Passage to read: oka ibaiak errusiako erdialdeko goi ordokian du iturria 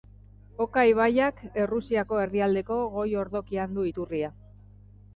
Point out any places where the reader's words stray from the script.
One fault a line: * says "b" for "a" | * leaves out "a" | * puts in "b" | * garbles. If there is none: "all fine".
all fine